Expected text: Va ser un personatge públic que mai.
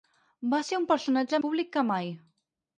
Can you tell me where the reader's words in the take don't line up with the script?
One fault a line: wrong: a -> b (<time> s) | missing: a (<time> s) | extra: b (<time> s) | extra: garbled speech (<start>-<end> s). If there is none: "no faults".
no faults